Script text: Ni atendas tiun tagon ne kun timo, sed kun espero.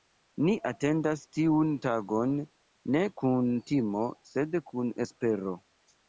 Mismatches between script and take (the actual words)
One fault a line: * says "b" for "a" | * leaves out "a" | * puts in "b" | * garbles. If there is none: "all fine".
all fine